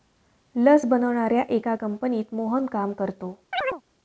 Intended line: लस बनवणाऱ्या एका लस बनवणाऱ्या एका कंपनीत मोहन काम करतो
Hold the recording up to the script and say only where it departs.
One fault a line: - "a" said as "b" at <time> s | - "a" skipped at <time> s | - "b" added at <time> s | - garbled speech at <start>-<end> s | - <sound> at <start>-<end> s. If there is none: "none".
- "लस बनवणाऱ्या एका" skipped at 1.8 s
- chirp at 3.5-3.8 s